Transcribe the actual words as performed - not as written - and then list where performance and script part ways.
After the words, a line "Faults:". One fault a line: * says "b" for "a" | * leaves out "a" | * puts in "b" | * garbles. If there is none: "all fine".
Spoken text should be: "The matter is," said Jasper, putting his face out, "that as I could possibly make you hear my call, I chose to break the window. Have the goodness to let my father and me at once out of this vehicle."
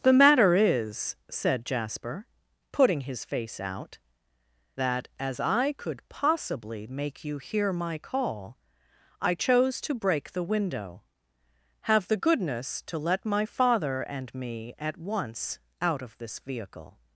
"The matter is," said Jasper, putting his face out, "that as I could possibly make you hear my call, I chose to break the window. Have the goodness to let my father and me at once out of this vehicle."
Faults:
all fine